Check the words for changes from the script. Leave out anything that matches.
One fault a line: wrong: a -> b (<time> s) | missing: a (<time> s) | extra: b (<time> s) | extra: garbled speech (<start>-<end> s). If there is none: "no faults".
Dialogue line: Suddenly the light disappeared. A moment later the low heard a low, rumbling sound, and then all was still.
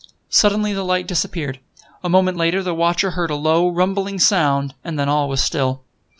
wrong: low -> watcher (2.7 s)